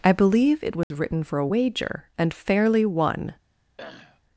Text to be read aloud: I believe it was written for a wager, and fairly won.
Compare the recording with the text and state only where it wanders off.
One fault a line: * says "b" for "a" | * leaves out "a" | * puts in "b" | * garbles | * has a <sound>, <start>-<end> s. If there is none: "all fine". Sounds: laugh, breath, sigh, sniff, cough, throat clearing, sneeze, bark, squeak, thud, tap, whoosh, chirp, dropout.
* has a dropout, 0.8-0.9 s
* has a throat clearing, 3.8-4.2 s